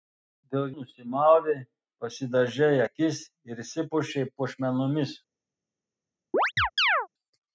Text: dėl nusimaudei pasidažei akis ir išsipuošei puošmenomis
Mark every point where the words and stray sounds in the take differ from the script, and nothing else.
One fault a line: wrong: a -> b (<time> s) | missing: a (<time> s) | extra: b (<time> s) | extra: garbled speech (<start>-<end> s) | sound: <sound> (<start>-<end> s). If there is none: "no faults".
sound: chirp (6.3-7.1 s)